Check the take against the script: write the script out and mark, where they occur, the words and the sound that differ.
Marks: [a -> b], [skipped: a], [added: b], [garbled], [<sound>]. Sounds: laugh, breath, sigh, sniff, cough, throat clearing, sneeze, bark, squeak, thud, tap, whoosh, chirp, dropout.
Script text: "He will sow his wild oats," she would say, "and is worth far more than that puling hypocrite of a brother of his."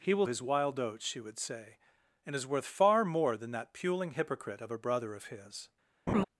"He will [skipped: sow] his wild oats," she would say, "and is worth far more than that puling hypocrite of a brother of his." [laugh]